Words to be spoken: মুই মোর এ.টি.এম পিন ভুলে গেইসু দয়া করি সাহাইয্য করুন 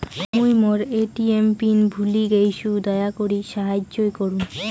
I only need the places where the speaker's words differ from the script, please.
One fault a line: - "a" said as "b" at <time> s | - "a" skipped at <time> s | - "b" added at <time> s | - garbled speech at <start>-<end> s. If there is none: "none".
none